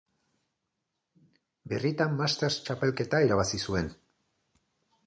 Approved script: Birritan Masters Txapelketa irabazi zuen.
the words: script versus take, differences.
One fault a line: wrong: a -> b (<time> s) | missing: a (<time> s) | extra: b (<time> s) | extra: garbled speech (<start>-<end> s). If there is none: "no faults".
no faults